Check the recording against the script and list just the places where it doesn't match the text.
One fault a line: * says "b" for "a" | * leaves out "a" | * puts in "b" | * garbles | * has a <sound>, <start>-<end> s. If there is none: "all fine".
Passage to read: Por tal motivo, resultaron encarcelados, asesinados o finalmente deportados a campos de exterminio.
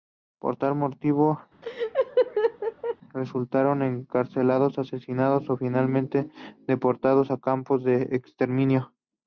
* has a laugh, 1.6-3.0 s